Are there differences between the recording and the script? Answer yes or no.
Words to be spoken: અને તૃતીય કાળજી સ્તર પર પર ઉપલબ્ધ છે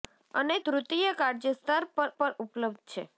no